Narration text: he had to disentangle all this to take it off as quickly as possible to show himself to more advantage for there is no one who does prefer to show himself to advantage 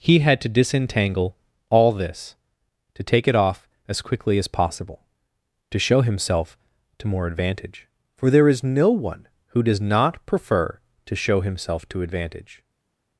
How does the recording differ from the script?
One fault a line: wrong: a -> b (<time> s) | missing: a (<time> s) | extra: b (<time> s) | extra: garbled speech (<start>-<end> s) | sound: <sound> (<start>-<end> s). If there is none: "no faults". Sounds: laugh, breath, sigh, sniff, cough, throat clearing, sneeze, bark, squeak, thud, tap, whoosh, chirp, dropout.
extra: not (9.8 s)